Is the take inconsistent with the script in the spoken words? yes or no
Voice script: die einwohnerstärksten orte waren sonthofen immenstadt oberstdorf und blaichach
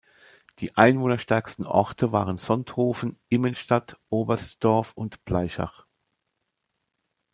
no